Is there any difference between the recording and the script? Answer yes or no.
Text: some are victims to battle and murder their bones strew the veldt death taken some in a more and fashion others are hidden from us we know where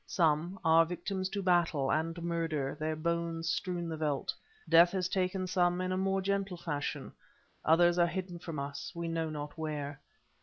yes